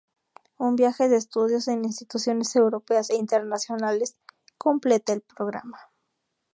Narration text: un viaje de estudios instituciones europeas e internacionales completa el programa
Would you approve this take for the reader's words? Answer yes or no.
no